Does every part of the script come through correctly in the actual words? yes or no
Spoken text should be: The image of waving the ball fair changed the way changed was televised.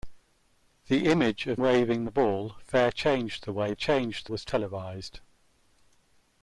yes